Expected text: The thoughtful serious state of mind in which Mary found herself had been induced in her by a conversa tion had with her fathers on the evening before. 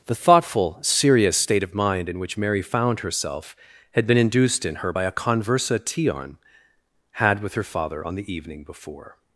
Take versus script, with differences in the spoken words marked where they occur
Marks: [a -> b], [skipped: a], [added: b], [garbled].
The thoughtful serious state of mind in which Mary found herself had been induced in her by a conversa tion had with her [fathers -> father] on the evening before.